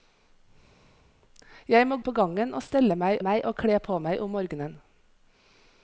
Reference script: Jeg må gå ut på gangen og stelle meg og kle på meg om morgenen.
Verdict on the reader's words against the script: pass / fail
fail